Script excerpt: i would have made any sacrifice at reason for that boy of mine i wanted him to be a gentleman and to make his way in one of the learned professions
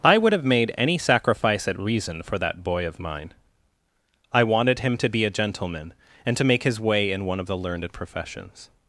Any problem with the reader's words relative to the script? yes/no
no